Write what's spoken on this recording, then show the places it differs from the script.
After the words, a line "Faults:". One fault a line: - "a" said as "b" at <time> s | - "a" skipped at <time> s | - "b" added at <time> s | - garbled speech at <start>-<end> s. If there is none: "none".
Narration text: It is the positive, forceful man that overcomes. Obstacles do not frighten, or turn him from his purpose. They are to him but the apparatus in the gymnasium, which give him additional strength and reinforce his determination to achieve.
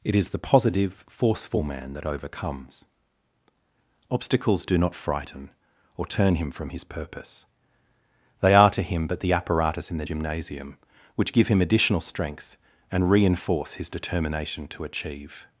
It is the positive, forceful man that overcomes. Obstacles do not frighten, or turn him from his purpose. They are to him but the apparatus in the gymnasium, which give him additional strength and reinforce his determination to achieve.
Faults:
none